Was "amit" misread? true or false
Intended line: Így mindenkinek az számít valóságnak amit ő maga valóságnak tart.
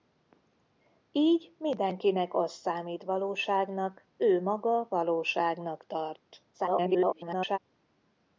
true